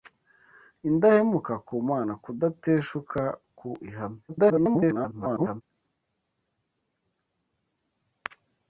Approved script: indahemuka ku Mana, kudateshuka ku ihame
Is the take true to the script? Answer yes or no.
no